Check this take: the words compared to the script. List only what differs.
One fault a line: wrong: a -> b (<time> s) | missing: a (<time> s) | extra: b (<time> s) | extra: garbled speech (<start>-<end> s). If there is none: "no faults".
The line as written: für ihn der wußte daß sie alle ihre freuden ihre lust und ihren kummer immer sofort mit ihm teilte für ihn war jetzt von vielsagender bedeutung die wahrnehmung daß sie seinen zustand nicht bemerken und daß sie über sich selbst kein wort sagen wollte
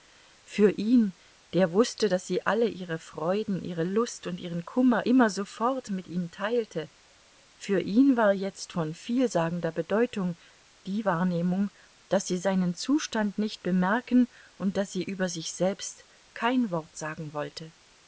no faults